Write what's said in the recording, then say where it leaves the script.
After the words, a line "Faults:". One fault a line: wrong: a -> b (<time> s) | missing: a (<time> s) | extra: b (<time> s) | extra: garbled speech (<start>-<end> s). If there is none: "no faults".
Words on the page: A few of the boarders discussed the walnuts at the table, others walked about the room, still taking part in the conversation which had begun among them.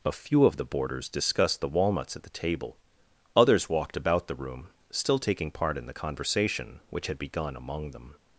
A few of the boarders discussed the walnuts at the table, others walked about the room, still taking part in the conversation which had begun among them.
Faults:
no faults